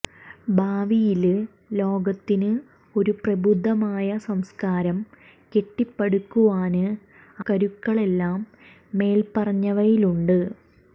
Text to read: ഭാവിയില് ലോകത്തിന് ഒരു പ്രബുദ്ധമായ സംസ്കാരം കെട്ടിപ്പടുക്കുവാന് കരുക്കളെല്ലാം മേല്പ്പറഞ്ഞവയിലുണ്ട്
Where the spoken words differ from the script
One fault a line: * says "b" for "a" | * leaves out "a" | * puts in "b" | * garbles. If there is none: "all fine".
all fine